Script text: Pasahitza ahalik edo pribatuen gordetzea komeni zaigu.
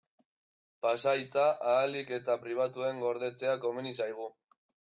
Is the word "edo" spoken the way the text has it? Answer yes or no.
no